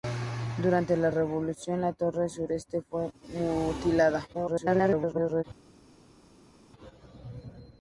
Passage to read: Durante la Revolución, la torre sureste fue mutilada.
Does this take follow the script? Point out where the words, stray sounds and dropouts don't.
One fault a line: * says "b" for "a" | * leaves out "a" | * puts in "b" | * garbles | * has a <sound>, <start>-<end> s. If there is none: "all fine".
* garbles